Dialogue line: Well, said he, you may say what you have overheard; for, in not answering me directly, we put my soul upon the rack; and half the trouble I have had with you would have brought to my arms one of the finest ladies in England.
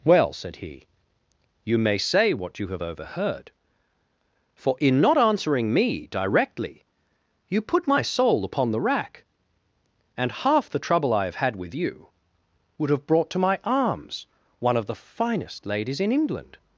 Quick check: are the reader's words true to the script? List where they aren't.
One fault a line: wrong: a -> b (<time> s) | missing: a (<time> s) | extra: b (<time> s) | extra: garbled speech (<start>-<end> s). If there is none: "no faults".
wrong: we -> you (7.5 s)